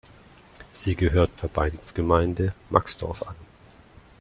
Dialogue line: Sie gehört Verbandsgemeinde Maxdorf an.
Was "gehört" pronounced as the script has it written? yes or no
yes